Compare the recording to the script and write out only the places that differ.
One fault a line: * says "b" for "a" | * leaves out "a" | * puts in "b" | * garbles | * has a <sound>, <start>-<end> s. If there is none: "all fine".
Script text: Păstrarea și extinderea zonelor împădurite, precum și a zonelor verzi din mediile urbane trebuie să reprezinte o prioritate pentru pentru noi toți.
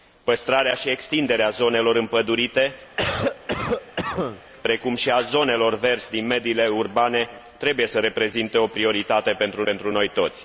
* has a cough, 3.0-4.4 s